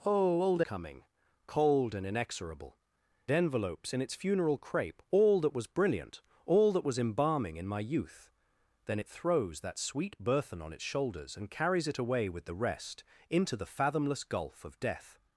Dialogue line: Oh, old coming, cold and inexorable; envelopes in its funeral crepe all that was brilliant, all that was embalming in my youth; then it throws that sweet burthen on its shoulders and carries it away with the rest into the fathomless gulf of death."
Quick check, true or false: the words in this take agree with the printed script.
true